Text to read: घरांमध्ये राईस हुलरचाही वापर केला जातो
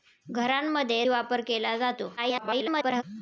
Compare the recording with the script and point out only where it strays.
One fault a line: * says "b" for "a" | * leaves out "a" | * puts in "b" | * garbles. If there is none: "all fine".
* leaves out "राईस हुलरचाही"
* garbles